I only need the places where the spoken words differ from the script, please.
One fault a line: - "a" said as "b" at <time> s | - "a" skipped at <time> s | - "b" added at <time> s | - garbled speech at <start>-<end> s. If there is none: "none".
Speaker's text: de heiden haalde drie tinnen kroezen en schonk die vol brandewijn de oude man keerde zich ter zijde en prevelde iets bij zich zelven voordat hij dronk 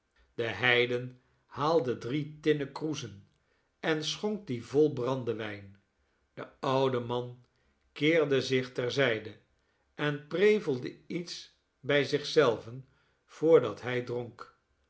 none